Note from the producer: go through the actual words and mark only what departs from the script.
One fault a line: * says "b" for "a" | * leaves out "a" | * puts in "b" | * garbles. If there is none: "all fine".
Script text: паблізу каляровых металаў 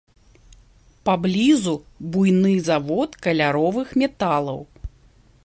* puts in "буйны завод"